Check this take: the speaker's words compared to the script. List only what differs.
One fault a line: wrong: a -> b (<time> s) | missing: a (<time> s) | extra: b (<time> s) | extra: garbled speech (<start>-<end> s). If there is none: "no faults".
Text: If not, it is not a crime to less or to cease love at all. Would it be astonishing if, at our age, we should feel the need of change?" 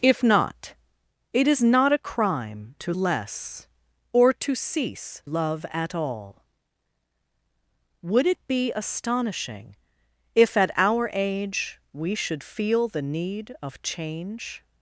no faults